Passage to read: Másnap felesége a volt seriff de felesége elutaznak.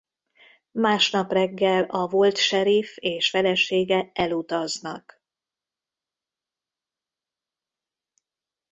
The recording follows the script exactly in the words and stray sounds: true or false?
false